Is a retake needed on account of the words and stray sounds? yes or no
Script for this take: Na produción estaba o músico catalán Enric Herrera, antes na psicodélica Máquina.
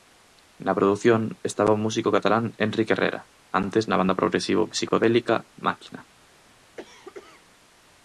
yes